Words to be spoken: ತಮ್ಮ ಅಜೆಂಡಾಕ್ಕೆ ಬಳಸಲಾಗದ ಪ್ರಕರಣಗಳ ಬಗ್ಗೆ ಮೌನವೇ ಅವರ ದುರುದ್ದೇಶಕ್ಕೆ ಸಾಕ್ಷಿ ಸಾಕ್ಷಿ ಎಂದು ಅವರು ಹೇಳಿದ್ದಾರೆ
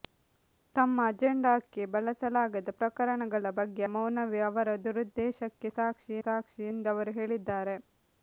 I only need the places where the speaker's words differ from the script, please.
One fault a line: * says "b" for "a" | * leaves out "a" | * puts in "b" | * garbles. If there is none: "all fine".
all fine